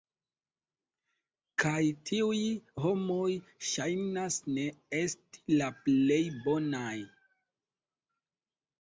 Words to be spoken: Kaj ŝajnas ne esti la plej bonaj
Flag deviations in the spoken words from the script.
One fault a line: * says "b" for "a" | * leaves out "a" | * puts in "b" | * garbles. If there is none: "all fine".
* puts in "tiuj homoj"